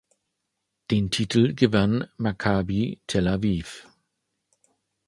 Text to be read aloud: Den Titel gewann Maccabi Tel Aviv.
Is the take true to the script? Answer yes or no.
yes